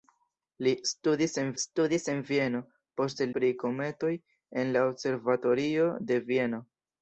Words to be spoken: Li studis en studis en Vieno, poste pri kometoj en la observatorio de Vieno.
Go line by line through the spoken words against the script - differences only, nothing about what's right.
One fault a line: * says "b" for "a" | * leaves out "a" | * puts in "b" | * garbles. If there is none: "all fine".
all fine